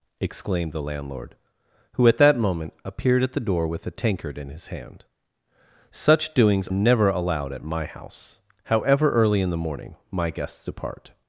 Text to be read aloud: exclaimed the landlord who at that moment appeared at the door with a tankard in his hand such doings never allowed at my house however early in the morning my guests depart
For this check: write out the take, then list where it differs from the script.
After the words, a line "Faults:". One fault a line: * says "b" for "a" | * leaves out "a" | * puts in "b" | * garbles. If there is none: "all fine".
exclaimed the landlord who at that moment appeared at the door with a tankard in his hand such doings never allowed at my house however early in the morning my guests depart
Faults:
all fine